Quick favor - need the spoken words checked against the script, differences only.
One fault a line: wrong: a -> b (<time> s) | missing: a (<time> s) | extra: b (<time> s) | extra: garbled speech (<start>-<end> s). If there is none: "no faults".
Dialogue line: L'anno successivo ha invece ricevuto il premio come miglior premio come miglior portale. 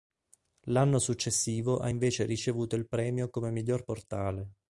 missing: premio come miglior (3.8 s)